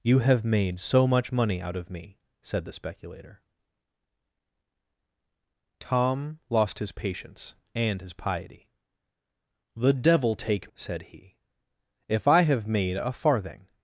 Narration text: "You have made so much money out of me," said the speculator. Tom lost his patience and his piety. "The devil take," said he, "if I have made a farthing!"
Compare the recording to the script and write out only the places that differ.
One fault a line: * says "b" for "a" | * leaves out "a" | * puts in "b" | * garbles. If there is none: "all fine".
all fine